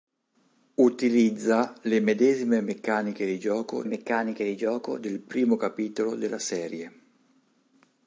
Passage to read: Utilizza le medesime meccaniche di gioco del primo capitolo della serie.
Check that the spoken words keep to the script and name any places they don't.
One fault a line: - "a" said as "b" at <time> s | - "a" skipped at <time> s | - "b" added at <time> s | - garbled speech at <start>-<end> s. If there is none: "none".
- "meccaniche di gioco" added at 3.8 s